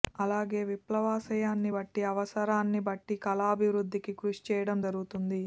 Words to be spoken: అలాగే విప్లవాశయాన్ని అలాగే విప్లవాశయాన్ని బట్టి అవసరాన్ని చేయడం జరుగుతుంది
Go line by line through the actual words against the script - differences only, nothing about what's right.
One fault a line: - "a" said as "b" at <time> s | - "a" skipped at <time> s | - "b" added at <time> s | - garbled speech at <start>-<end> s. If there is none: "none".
- "అలాగే విప్లవాశయాన్ని" said as "బట్టి అవసరాన్ని" at 1.7 s
- "అవసరాన్ని" said as "కళాభివృద్ధికి కృషి" at 3.3 s